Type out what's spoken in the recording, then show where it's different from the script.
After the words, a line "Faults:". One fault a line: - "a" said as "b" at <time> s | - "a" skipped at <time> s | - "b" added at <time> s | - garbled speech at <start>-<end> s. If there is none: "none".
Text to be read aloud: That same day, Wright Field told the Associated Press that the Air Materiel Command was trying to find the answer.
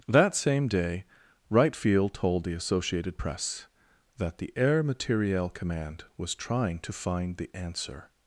That same day, Wright Field told the Associated Press that the Air Materiel Command was trying to find the answer.
Faults:
none